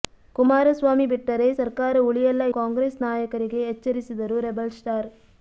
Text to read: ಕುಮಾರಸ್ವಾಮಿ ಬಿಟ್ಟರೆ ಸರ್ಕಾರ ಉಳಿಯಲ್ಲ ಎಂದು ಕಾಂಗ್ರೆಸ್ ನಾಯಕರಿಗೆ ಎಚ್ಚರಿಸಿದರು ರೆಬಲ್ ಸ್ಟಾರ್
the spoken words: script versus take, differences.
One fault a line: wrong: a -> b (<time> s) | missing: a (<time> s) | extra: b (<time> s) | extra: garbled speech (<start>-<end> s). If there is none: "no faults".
missing: ಎಂದು (2.4 s)